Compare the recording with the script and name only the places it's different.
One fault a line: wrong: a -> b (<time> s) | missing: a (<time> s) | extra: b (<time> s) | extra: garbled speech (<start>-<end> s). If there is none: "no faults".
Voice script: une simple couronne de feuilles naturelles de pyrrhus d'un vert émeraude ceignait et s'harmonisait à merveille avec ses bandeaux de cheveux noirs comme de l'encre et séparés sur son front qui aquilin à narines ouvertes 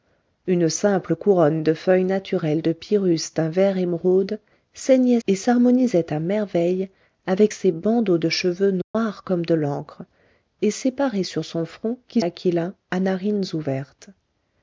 no faults